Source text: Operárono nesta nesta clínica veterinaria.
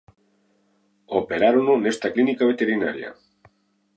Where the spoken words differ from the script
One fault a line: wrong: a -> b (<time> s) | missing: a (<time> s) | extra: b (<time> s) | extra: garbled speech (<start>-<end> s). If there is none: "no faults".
missing: nesta (2.1 s)